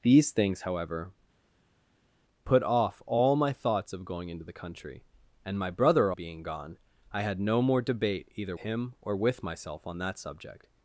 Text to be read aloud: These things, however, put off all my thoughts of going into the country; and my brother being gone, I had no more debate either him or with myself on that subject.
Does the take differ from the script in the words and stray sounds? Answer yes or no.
no